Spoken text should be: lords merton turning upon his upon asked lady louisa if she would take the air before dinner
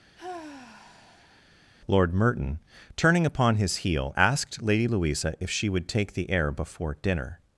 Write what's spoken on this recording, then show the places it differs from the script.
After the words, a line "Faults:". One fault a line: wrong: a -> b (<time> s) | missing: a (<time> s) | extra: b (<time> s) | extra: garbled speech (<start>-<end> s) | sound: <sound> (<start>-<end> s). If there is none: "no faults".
lord merton turning upon his heel asked lady louisa if she would take the air before dinner
Faults:
sound: sigh (0.2-1.4 s)
wrong: lords -> lord (1.9 s)
wrong: upon -> heel (3.8 s)